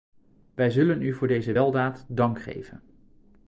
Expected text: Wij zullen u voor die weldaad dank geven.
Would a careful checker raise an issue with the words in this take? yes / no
yes